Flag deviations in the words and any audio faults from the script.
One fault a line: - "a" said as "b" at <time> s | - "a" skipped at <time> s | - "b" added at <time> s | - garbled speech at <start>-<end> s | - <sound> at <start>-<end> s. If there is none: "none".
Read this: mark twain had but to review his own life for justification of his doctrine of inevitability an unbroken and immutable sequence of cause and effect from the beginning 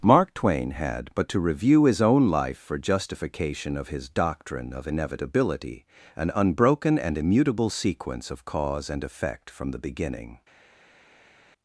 none